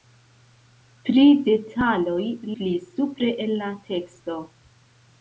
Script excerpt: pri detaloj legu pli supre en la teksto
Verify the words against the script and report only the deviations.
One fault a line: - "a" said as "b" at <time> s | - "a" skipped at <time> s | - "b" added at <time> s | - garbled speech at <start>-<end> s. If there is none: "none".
- "legu" skipped at 2.2 s